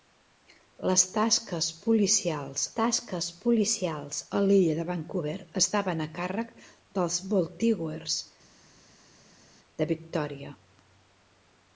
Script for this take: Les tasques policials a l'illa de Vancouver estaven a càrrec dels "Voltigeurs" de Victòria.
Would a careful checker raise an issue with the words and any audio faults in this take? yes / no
yes